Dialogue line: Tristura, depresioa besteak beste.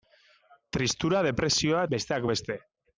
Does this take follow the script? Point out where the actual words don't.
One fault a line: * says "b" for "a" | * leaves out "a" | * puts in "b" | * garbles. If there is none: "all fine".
all fine